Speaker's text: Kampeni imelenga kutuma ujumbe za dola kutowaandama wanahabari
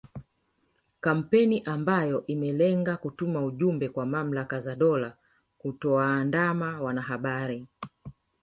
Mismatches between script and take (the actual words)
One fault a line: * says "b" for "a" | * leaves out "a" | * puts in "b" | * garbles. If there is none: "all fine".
* puts in "ambayo"
* puts in "kwa mamlaka"